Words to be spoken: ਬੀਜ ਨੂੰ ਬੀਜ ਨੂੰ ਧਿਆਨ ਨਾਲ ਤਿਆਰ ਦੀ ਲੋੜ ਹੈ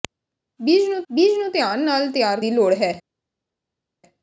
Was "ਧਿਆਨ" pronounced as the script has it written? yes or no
yes